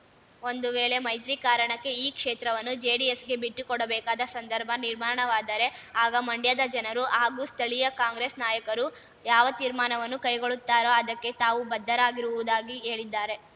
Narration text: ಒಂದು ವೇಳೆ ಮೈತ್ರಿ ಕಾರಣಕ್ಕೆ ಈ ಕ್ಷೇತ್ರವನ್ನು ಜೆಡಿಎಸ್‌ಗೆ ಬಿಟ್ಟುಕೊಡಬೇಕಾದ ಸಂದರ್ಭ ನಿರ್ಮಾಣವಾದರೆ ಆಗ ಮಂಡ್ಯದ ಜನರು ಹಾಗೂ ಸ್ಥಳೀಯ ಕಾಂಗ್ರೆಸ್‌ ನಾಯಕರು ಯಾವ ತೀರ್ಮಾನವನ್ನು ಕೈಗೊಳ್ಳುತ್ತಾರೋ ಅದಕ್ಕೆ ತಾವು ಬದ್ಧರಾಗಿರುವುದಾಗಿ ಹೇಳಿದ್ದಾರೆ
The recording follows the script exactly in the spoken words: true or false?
true